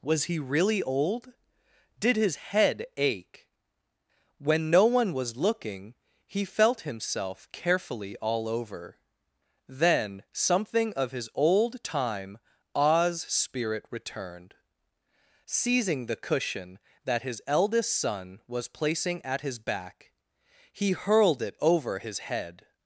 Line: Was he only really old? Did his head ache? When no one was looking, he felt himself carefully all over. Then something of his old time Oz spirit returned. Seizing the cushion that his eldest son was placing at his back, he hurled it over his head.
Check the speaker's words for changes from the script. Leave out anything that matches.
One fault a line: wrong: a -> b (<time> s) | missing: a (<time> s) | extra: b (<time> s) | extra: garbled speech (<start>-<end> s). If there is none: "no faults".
missing: only (0.4 s)